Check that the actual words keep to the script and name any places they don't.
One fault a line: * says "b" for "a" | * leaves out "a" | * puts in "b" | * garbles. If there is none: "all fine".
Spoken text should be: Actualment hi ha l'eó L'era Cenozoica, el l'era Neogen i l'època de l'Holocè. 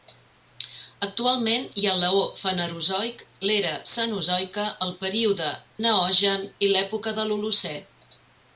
* puts in "Fanerozoic"
* says "període" for "l'era"